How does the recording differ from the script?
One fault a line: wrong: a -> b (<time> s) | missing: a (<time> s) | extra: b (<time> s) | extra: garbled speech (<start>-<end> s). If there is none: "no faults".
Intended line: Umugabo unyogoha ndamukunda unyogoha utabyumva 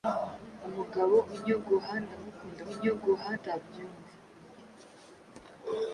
no faults